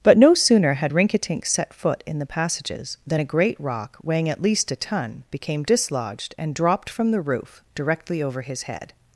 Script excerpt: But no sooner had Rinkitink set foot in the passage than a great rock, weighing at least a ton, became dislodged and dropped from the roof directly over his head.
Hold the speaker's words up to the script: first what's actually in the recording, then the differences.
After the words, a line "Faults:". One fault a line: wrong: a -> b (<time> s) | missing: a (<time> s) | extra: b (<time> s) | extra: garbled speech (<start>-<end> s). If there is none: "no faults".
But no sooner had Rinkitink set foot in the passages than a great rock, weighing at least a ton, became dislodged and dropped from the roof directly over his head.
Faults:
wrong: passage -> passages (2.3 s)